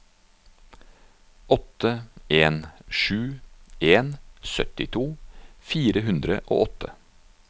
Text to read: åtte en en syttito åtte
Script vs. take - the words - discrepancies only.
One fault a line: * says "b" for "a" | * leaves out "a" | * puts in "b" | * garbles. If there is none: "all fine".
* puts in "sju"
* puts in "fire hundre og"